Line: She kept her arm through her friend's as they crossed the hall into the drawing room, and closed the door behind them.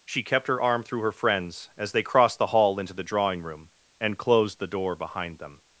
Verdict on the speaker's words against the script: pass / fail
pass